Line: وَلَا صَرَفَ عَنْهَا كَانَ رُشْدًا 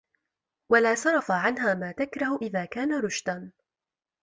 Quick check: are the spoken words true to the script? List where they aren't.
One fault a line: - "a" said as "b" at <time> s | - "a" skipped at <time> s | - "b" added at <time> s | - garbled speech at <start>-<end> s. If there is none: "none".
- "مَا تَكْرَهُ إذَا" added at 1.7 s